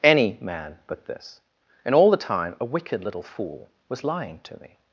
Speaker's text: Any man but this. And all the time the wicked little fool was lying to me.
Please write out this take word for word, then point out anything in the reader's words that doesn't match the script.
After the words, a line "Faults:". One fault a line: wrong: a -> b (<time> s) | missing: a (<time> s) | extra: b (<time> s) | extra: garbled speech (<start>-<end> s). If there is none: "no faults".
Any man but this. And all the time a wicked little fool was lying to me.
Faults:
wrong: the -> a (2.6 s)